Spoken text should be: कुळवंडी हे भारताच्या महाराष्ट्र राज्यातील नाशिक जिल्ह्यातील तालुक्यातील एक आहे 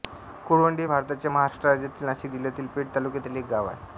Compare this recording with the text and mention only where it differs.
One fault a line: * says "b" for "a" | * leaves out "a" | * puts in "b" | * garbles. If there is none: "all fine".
* puts in "पेठ"
* puts in "गाव"